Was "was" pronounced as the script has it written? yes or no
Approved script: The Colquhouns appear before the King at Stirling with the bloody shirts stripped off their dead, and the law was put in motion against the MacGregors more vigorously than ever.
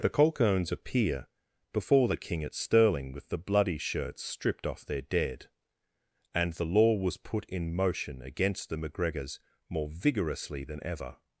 yes